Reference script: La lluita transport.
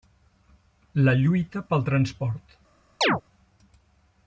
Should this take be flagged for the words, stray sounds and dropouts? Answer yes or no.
yes